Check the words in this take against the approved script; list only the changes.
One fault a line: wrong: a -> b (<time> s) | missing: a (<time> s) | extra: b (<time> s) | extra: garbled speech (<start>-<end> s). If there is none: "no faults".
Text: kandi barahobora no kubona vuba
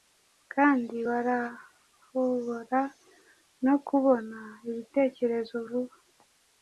extra: ibitekerezo (4.7 s)